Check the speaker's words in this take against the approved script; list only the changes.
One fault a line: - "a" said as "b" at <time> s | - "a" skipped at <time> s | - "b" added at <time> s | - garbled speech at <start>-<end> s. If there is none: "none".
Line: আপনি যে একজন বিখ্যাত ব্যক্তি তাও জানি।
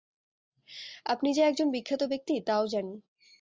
none